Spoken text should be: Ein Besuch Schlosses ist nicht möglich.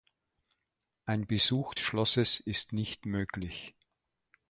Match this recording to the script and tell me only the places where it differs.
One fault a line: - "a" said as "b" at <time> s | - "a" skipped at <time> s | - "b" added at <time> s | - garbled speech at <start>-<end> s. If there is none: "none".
none